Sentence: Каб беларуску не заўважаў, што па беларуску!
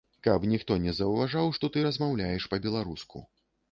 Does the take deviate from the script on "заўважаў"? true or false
false